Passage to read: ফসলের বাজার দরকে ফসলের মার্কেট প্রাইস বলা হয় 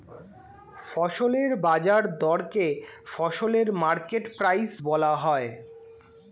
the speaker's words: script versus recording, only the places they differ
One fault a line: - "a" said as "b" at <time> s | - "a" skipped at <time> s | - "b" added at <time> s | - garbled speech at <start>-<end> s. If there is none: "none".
none